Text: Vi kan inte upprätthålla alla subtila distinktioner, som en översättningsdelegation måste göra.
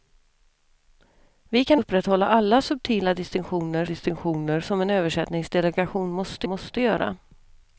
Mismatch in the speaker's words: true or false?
true